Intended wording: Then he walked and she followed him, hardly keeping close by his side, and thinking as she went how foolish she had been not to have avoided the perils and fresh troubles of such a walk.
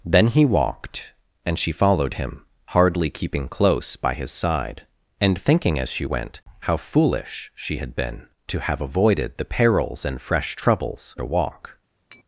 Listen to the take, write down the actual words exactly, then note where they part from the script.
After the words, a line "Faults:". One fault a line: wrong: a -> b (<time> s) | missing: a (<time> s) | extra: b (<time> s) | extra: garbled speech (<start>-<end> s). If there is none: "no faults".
Then he walked and she followed him, hardly keeping close by his side, and thinking as she went how foolish she had been to have avoided the perils and fresh troubles a walk.
Faults:
missing: not (8.2 s)
missing: of such (11.2 s)